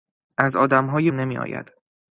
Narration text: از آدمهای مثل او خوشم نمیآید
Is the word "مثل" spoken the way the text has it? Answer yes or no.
no